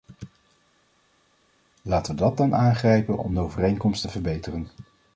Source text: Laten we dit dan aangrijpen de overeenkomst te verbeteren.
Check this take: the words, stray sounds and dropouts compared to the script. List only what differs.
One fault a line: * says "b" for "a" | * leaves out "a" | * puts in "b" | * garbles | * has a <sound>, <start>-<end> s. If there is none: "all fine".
* says "dat" for "dit"
* puts in "om"